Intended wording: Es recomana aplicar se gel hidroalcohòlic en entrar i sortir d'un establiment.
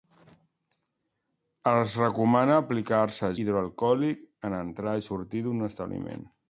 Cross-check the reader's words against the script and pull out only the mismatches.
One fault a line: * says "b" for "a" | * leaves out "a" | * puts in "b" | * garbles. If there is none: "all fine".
* leaves out "gel"